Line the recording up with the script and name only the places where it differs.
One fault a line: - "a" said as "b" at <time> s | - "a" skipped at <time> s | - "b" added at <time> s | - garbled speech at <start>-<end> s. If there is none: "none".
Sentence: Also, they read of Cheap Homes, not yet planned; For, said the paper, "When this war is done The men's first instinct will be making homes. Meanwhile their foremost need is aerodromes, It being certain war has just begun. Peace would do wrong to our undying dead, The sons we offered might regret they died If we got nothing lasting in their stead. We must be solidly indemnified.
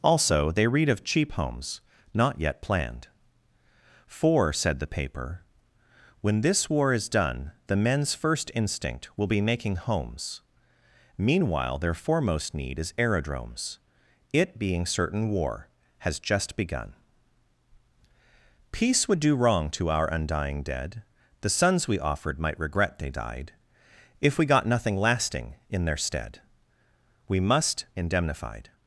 - "be solidly" skipped at 27.9 s